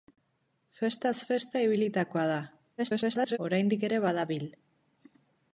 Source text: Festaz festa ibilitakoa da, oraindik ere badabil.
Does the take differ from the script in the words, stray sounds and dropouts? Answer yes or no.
yes